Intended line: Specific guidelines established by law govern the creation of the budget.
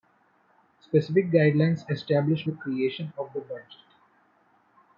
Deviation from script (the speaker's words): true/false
true